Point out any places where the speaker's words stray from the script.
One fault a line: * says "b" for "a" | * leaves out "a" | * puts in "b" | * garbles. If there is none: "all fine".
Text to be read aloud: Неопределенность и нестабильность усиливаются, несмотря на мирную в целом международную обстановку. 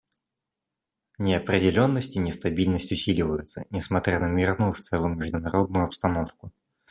all fine